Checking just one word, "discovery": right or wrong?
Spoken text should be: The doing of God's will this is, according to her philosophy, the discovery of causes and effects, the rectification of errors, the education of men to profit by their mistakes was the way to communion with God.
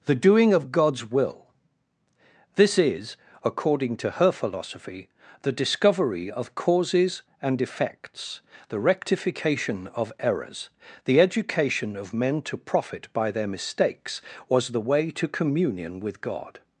right